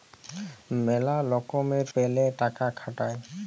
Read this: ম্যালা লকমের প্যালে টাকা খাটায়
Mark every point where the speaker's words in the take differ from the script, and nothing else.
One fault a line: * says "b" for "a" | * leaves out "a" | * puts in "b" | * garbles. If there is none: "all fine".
all fine